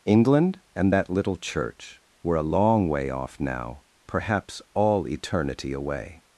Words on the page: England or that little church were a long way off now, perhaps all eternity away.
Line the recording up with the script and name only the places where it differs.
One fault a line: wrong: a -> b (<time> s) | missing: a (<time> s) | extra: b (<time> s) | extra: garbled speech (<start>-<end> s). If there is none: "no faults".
wrong: or -> and (0.8 s)